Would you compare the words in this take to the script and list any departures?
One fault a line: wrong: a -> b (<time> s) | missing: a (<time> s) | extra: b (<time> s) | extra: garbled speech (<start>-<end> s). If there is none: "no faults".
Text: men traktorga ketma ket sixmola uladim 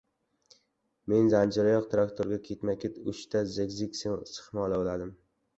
extra: zanjiroyoq (1.3 s)
extra: uchta zig zag (3.1 s)